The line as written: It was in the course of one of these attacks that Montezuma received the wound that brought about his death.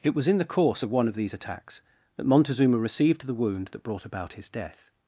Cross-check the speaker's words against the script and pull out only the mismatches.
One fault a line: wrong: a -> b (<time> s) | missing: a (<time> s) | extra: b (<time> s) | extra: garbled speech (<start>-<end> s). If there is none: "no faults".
no faults